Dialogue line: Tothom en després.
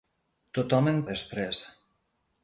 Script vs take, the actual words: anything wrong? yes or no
no